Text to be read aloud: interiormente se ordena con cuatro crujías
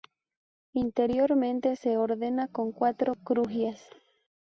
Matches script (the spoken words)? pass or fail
pass